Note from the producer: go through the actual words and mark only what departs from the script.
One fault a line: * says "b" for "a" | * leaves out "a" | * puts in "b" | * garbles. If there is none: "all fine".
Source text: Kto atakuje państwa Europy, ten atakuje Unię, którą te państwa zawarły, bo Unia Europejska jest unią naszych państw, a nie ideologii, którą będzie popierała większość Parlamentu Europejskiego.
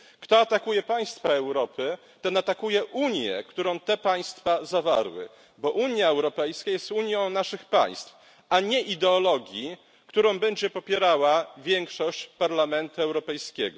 all fine